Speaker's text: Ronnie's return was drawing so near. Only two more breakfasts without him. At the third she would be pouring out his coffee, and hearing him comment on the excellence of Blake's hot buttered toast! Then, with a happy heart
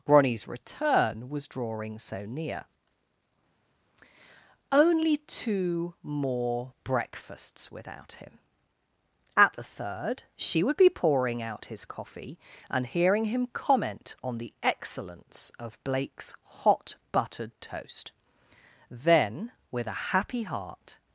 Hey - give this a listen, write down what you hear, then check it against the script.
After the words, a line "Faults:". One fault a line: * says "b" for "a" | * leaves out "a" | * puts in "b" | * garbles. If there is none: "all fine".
Ronnie's return was drawing so near. Only two more breakfasts without him. At the third she would be pouring out his coffee, and hearing him comment on the excellence of Blake's hot buttered toast! Then, with a happy heart
Faults:
all fine